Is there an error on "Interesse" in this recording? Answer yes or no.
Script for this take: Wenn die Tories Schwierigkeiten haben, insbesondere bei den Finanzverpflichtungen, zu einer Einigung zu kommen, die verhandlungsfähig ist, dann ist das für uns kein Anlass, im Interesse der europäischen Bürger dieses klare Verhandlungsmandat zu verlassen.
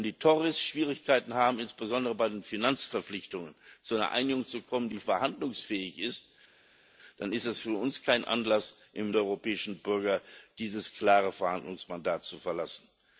yes